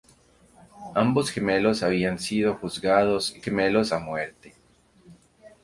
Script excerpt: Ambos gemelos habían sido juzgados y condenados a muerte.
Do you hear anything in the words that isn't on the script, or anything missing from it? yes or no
yes